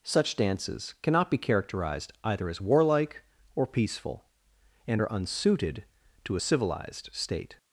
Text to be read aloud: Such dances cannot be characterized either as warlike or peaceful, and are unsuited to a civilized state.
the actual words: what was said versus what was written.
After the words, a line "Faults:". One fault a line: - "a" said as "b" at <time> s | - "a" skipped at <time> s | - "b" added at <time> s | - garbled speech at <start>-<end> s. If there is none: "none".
Such dances cannot be characterized either as warlike or peaceful, and are unsuited to a civilized state.
Faults:
none